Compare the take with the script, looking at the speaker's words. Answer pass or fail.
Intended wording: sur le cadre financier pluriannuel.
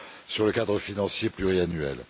pass